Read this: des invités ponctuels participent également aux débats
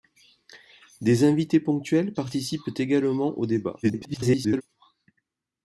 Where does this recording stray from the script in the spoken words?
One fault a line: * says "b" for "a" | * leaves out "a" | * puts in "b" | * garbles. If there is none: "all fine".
* garbles